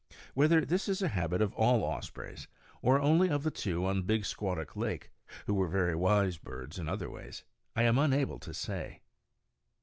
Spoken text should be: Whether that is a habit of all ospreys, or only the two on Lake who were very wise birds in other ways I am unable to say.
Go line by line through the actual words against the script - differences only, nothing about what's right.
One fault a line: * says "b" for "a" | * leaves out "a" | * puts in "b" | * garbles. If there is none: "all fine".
* says "this" for "that"
* puts in "of"
* puts in "Big Squatuk"